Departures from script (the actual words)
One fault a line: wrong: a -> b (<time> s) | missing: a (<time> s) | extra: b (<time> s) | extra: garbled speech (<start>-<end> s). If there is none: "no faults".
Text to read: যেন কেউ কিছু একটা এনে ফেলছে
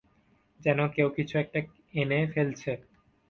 no faults